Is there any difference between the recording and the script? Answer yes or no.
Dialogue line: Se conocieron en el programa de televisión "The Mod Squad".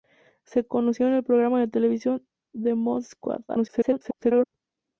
yes